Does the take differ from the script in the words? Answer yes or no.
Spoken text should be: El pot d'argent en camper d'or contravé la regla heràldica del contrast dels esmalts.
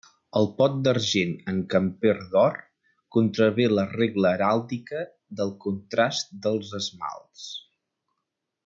no